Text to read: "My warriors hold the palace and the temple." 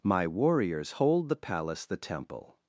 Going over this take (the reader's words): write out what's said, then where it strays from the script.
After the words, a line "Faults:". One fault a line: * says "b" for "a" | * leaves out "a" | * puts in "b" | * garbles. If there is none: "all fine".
"My warriors hold the palace the temple."
Faults:
* leaves out "and"